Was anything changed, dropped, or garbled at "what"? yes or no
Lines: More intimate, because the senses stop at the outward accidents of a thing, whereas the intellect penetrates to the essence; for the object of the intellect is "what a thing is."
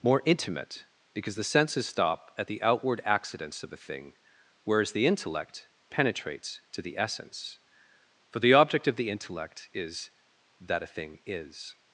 yes